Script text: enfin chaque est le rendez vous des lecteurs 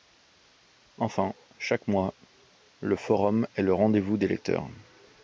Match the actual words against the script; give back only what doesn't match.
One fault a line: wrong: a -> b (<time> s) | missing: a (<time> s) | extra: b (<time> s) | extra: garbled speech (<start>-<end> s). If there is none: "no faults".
extra: mois le forum (1.9 s)